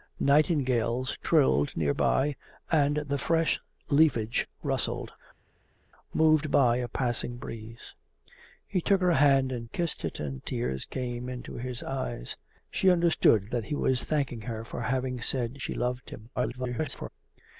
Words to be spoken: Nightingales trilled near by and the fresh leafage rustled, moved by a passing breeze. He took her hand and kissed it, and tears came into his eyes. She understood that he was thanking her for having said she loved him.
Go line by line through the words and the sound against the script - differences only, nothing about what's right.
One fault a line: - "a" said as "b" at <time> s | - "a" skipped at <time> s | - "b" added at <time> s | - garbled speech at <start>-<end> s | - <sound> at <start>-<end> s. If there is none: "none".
- garbled speech at 16.4-17.1 s